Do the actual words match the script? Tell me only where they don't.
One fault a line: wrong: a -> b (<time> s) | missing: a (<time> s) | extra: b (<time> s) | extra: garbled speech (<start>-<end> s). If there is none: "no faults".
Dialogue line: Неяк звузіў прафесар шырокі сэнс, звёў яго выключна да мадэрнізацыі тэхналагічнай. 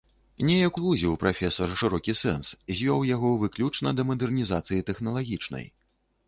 no faults